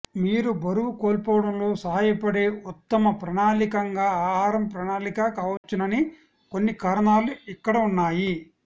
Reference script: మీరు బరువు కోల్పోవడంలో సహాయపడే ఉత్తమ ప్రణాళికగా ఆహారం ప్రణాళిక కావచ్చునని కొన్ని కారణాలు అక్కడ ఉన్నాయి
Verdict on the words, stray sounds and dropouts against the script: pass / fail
fail